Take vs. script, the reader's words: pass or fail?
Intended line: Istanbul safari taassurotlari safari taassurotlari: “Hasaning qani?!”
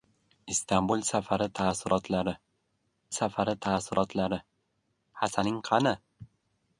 pass